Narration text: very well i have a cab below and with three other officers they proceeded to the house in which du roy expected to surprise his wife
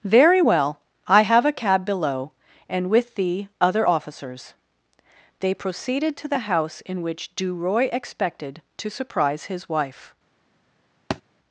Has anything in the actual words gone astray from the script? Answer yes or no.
yes